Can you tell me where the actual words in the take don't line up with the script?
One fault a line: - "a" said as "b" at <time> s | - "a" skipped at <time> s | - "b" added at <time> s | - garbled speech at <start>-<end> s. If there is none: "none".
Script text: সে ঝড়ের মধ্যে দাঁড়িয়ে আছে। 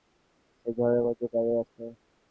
none